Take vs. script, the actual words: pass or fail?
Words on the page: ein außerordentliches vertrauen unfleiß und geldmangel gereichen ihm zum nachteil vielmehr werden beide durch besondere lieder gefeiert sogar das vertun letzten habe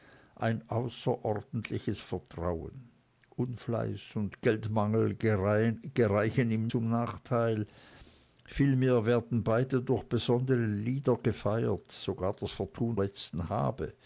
pass